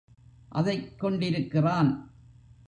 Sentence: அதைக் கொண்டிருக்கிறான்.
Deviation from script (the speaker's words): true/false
false